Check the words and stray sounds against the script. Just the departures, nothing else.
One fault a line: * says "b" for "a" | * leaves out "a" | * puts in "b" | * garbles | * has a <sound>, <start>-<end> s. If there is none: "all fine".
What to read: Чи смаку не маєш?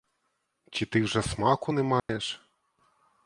* puts in "ти вже"
* has a dropout, 2.0-2.1 s